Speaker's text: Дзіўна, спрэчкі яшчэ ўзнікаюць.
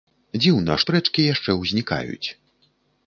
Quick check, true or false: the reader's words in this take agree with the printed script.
true